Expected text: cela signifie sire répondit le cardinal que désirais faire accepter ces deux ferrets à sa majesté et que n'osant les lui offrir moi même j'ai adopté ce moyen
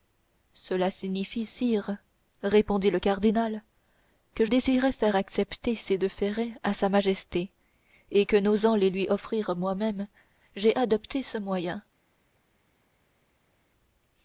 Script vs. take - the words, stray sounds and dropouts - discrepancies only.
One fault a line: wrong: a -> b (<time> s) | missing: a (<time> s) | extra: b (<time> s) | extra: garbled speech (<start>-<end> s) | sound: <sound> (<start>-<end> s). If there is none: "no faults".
no faults